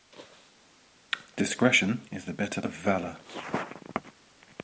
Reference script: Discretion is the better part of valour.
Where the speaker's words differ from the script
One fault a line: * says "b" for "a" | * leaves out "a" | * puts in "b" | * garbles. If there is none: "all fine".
* leaves out "part"